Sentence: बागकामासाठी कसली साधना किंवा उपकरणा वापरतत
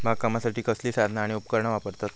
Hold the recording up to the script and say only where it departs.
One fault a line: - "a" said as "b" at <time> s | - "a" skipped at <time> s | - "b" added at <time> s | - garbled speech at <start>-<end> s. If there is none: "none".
- "किंवा" said as "आणि" at 1.2 s